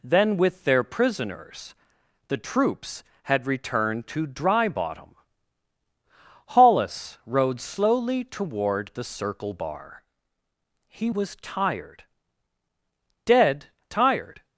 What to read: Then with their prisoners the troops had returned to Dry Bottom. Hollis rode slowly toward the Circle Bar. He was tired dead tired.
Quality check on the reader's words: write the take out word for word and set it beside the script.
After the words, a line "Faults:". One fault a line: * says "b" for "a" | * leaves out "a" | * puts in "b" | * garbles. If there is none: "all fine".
Then with their prisoners the troops had returned to Dry Bottom. Hollis rode slowly toward the Circle Bar. He was tired dead tired.
Faults:
all fine